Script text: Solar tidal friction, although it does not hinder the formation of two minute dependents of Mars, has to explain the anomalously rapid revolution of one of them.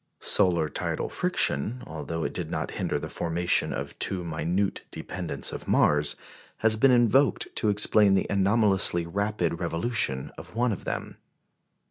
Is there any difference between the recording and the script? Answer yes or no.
yes